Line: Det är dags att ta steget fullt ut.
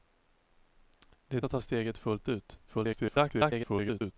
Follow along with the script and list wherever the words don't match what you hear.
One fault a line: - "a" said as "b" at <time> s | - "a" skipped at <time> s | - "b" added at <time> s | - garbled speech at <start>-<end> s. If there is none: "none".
- "dags" skipped at 1.4 s
- garbled speech at 2.7-4.1 s